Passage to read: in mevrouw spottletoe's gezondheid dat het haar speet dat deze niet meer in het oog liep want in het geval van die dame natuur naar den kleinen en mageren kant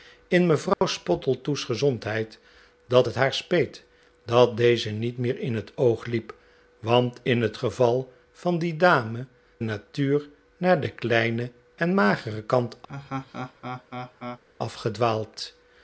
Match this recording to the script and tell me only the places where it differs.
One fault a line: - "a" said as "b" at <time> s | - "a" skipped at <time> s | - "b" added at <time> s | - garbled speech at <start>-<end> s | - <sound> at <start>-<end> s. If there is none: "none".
- dropout at 0.7-0.8 s
- laugh at 12.9-14.4 s